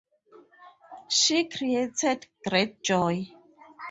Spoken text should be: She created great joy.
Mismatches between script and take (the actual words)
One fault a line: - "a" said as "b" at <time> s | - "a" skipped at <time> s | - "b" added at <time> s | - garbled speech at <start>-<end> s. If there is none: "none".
none